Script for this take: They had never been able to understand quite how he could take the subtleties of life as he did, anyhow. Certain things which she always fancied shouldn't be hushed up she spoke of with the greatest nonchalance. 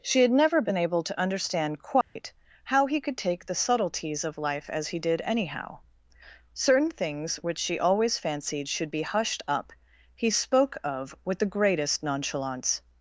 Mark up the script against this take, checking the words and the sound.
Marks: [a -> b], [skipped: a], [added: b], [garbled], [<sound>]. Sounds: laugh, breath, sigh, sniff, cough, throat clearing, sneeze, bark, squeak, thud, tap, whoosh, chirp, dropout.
[They -> She] had never been able to understand quite [dropout] how he could take the subtleties of life as he did, anyhow. Certain things which she always fancied [shouldn't -> should] be hushed up [she -> he] spoke of with the greatest nonchalance.